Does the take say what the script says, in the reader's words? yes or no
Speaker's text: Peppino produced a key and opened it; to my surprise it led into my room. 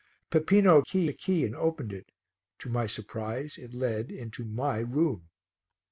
no